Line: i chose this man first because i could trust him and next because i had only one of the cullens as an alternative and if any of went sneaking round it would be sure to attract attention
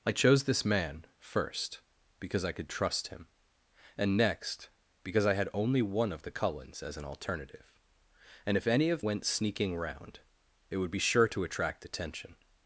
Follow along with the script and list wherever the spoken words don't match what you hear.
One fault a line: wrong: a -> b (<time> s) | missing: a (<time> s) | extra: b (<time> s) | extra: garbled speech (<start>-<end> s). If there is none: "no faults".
no faults